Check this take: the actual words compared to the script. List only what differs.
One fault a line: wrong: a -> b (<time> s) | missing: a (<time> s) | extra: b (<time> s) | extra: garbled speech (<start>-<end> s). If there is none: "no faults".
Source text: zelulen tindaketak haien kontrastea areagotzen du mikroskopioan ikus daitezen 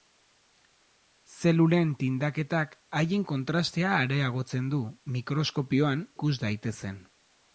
no faults